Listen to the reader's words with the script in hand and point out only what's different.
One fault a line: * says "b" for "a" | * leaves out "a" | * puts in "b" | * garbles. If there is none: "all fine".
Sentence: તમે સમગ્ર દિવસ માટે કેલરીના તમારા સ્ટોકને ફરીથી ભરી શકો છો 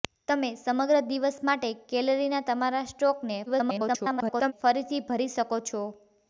* garbles